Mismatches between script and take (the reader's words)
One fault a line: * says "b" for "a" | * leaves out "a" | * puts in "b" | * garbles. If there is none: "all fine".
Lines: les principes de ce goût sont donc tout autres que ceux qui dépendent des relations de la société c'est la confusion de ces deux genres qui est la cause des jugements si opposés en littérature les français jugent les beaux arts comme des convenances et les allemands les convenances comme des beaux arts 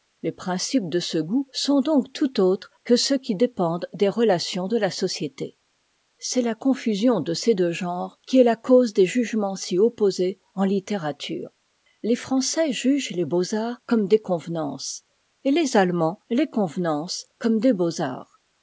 all fine